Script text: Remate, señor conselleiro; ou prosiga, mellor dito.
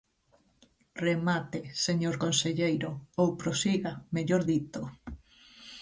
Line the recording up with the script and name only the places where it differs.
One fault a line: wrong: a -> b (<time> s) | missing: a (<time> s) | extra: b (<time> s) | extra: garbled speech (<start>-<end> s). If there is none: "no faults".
no faults